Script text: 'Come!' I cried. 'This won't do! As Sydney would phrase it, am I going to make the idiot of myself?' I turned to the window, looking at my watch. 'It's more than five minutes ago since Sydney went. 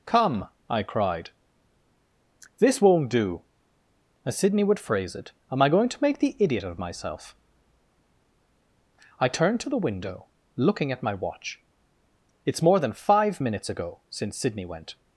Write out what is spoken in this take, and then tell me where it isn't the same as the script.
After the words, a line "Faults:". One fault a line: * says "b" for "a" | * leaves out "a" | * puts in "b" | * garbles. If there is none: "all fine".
'Come!' I cried. 'This won't do! As Sydney would phrase it, am I going to make the idiot of myself?' I turned to the window, looking at my watch. 'It's more than five minutes ago since Sydney went.
Faults:
all fine